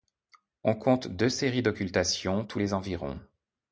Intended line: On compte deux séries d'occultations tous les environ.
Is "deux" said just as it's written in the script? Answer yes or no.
yes